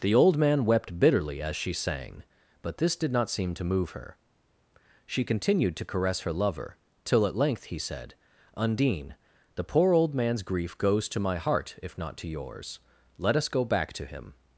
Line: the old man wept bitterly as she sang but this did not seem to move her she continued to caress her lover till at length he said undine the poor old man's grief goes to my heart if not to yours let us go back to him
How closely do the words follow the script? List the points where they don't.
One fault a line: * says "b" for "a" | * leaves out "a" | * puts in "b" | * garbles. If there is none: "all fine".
all fine